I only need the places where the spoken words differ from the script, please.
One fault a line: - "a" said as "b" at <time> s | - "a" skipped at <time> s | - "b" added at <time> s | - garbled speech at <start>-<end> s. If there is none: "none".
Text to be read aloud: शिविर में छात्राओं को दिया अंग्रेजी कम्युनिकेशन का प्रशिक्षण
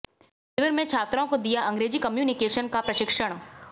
none